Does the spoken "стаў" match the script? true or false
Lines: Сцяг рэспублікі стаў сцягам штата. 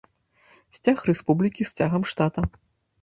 false